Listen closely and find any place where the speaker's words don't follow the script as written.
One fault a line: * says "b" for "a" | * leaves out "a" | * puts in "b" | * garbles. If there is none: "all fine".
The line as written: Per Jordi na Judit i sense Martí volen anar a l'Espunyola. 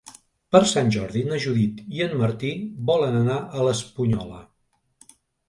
* puts in "Sant"
* says "en" for "sense"